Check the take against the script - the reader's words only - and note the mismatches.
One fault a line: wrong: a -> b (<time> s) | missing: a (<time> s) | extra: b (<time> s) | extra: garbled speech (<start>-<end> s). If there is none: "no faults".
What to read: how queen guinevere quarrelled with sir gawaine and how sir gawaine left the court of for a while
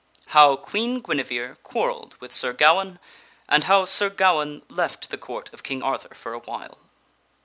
extra: king arthur (5.6 s)